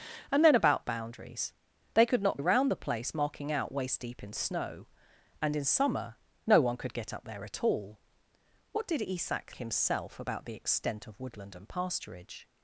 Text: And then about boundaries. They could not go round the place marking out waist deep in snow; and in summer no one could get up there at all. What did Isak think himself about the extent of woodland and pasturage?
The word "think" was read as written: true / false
false